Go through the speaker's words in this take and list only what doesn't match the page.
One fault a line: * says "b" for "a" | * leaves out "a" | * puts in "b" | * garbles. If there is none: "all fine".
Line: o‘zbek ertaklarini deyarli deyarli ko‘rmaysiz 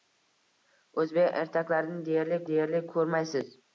all fine